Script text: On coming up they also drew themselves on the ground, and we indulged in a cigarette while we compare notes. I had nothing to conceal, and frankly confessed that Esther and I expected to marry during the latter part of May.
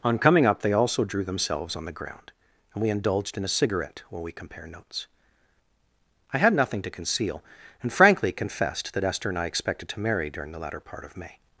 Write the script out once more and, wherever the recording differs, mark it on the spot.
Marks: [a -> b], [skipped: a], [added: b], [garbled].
On coming up they also drew themselves on the ground, and we indulged in a cigarette while we compare notes. I had nothing to conceal, and frankly confessed that Esther and I expected to marry during the latter part of May.